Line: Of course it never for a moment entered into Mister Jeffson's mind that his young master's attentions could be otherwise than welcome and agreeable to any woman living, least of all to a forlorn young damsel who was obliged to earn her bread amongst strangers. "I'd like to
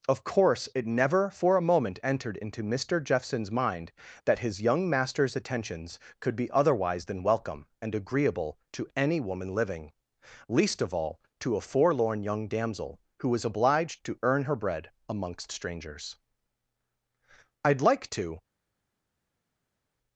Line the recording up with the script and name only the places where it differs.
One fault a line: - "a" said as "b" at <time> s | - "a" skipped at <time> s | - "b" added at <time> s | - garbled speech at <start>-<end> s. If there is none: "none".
none